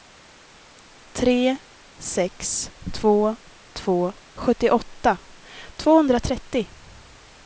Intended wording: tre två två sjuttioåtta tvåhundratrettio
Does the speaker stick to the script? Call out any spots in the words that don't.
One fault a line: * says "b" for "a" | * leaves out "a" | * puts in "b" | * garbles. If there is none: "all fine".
* puts in "sex"